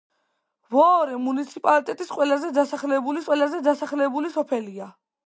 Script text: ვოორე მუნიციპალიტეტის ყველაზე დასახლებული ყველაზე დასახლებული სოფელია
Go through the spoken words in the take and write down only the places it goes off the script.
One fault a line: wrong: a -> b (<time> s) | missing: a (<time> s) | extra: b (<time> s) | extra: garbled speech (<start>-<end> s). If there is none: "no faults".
no faults